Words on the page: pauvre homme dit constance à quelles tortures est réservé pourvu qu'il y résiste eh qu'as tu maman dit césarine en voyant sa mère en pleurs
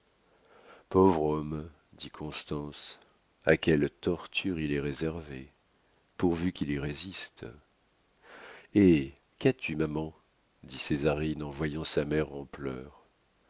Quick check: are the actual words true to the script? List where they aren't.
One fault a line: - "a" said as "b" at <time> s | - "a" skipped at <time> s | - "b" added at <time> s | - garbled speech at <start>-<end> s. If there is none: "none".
- "il" added at 4.6 s